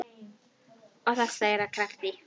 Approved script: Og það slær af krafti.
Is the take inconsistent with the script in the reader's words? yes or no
no